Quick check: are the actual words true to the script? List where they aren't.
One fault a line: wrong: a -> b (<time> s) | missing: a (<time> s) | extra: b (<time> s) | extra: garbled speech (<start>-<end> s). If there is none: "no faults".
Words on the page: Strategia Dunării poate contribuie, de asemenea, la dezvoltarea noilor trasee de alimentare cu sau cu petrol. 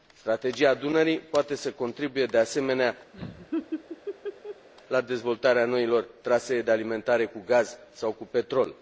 extra: să (1.6 s)
extra: gaz (7.5 s)